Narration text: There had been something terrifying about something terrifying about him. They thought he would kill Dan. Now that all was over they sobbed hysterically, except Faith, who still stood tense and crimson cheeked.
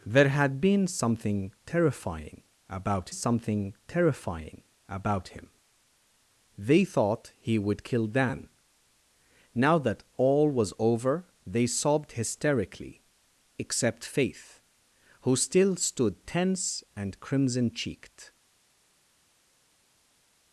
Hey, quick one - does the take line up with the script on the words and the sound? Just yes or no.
yes